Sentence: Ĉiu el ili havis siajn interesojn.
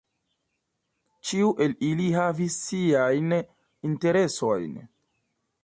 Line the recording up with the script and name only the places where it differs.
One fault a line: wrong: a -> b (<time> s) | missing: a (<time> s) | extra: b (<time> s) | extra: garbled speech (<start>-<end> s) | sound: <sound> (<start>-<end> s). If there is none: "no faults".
no faults